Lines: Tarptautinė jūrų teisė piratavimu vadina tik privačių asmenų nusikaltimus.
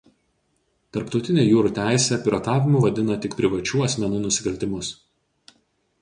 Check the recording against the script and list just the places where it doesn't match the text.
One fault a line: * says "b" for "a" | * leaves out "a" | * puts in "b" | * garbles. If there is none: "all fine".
all fine